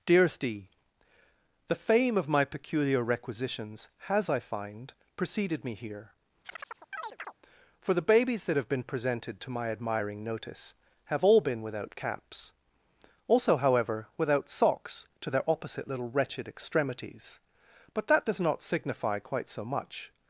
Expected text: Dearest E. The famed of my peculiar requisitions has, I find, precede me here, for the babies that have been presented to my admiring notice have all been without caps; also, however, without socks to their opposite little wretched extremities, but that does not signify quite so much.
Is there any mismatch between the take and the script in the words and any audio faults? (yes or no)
yes